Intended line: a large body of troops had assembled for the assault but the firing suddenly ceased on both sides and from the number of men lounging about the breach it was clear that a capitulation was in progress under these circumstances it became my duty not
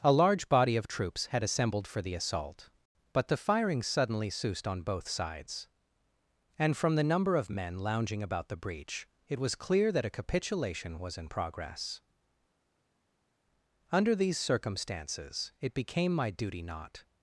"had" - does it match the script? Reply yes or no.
yes